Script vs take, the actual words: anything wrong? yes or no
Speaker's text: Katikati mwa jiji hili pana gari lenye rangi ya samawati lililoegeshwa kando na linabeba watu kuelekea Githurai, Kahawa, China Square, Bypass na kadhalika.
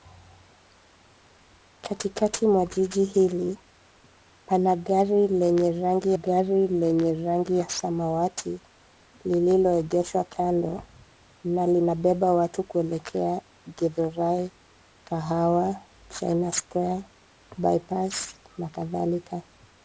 yes